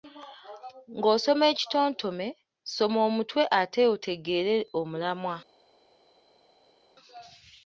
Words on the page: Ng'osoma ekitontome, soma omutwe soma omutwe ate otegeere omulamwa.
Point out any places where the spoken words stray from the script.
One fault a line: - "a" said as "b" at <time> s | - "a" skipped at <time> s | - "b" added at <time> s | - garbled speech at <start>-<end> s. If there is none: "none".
- "soma omutwe" skipped at 3.4 s